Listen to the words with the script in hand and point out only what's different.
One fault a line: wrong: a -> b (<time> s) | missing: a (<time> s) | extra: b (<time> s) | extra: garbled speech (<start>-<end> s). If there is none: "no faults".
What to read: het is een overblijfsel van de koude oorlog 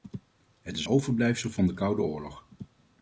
missing: een (0.9 s)